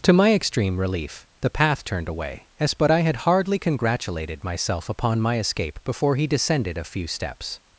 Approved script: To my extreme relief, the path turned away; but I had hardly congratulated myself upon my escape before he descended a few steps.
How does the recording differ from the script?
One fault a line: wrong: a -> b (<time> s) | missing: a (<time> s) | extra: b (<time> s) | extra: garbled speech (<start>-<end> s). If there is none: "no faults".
extra: as (2.6 s)